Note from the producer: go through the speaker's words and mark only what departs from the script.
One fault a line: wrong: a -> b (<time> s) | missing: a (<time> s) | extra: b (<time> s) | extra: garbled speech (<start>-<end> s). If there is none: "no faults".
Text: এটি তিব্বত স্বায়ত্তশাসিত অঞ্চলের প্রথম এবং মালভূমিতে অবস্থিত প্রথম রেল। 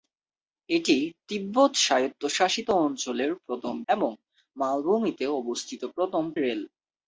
no faults